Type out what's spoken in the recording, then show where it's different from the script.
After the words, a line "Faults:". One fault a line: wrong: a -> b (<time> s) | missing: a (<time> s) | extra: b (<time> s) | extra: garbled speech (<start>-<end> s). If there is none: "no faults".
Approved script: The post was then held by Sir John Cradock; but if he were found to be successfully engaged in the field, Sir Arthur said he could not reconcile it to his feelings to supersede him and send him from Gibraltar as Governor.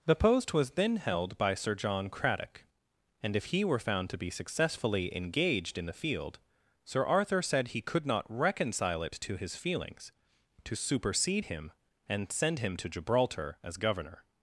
The post was then held by Sir John Cradock; and if he were found to be successfully engaged in the field, Sir Arthur said he could not reconcile it to his feelings to supersede him and send him to Gibraltar as Governor.
Faults:
wrong: but -> and (3.2 s)
wrong: from -> to (12.8 s)